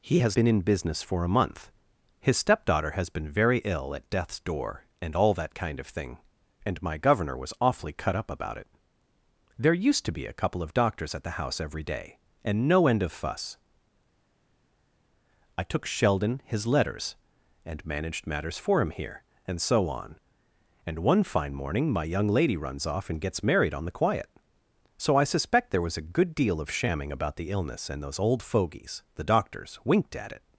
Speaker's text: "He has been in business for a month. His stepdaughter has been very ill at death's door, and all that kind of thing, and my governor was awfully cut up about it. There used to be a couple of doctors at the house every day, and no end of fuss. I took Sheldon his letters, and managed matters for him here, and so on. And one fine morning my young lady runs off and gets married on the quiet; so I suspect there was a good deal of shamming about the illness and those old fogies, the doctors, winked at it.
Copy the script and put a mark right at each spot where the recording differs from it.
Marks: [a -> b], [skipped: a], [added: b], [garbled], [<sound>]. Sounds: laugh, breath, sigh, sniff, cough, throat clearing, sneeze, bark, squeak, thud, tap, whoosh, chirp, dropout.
"He has been in business for a month. His stepdaughter has been very ill at death's door, and all that kind of thing, and my governor was awfully cut up about it. There used to be a couple of doctors at the house every day, and no end of fuss. I took Sheldon his letters, and managed matters for him here, and so on. And one fine morning my young lady runs off and gets married on the quiet; so I suspect there was a good deal of shamming about the illness and those old fogies, the doctors, winked at it.